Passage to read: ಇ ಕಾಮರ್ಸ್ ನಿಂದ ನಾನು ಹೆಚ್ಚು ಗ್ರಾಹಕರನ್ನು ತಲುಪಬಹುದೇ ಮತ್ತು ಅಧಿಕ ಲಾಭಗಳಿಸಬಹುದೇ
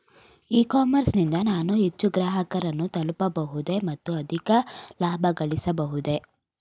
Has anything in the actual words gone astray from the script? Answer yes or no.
no